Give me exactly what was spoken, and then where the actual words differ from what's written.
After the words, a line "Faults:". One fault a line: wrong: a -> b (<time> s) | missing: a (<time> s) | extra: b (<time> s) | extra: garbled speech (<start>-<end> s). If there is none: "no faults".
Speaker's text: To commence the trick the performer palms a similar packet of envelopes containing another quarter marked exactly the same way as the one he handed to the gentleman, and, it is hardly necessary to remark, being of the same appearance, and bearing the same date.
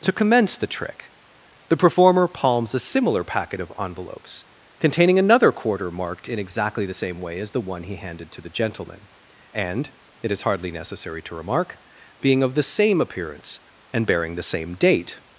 To commence the trick the performer palms a similar packet of envelopes containing another quarter marked in exactly the same way as the one he handed to the gentleman, and, it is hardly necessary to remark, being of the same appearance, and bearing the same date.
Faults:
extra: in (6.3 s)